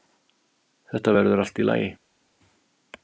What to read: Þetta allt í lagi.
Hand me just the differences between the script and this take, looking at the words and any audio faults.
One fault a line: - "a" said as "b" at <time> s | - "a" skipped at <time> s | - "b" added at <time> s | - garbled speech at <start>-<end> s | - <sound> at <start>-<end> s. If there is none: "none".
- "verður" added at 1.2 s